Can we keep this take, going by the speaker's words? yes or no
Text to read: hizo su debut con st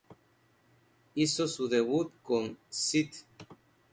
yes